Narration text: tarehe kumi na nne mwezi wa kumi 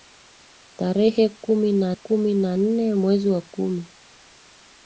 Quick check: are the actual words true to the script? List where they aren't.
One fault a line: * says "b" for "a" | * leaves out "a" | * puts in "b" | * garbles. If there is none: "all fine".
* puts in "kumi na"